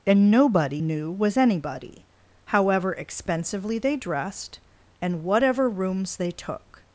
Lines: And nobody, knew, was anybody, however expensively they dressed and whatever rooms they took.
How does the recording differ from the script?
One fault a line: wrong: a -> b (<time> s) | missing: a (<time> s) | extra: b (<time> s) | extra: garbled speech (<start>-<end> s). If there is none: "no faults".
no faults